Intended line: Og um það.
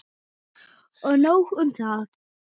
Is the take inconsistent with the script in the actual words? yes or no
yes